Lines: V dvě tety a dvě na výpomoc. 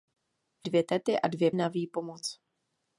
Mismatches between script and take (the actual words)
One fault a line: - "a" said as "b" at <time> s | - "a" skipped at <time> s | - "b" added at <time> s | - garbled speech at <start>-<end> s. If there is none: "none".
none